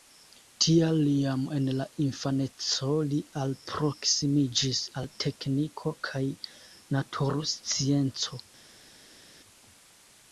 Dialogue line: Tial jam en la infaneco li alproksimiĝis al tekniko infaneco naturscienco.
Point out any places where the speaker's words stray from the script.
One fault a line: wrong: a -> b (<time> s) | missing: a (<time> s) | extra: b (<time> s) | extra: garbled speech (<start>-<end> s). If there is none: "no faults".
wrong: infaneco -> kaj (6.1 s)